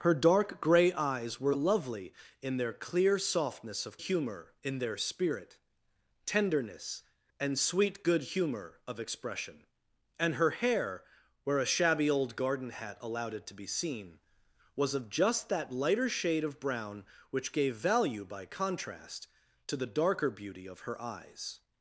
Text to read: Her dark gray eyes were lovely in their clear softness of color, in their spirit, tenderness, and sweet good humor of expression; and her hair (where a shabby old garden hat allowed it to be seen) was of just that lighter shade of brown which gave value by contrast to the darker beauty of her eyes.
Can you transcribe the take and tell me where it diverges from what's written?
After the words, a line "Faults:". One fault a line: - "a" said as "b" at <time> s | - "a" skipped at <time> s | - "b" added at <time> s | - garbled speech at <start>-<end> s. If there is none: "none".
Her dark gray eyes were lovely in their clear softness of humor, in their spirit, tenderness, and sweet good humor of expression; and her hair (where a shabby old garden hat allowed it to be seen) was of just that lighter shade of brown which gave value by contrast to the darker beauty of her eyes.
Faults:
- "color" said as "humor" at 4.0 s